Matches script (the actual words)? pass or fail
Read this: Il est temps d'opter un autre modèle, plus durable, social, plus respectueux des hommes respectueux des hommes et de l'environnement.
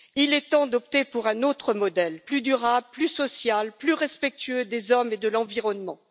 fail